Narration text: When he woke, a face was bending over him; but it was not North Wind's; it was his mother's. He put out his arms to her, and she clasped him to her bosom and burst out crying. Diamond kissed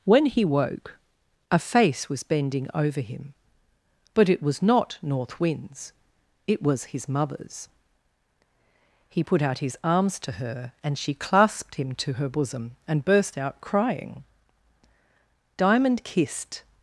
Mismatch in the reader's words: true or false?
false